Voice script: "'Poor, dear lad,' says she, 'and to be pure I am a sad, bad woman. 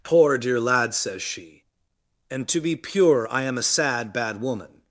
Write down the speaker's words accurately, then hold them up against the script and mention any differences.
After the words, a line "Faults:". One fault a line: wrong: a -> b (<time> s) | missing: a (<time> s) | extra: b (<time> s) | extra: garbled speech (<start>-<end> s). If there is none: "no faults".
"'Poor, dear lad,' says she, 'and to be pure I am a sad, bad woman.
Faults:
no faults